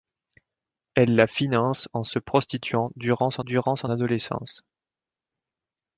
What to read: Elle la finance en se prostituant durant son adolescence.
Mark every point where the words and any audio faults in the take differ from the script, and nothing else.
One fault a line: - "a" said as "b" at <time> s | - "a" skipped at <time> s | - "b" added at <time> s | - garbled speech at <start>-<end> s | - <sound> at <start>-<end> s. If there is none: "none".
- "durant son" added at 3.4 s